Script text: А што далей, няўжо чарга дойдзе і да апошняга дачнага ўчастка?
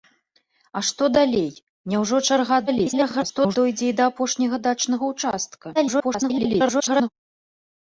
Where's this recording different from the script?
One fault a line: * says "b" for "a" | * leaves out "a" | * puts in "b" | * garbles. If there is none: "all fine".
* garbles
* garbles